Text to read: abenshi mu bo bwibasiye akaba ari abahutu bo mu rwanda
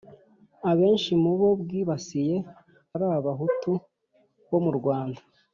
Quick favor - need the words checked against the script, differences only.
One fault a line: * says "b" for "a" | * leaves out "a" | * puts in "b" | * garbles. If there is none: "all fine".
* leaves out "akaba"